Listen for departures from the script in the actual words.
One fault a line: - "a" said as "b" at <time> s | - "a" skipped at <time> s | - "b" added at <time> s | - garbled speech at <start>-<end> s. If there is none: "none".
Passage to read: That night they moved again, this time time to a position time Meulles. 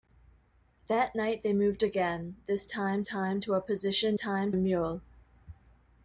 none